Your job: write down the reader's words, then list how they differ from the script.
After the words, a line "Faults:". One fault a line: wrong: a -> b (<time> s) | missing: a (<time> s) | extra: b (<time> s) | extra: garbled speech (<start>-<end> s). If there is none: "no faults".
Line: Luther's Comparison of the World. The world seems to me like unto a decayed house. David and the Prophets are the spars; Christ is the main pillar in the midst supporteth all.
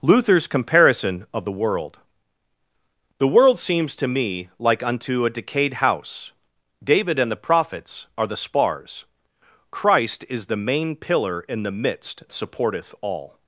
Luther's Comparison of the World. The world seems to me like unto a decayed house. David and the Prophets are the spars; Christ is the main pillar in the midst supporteth all.
Faults:
no faults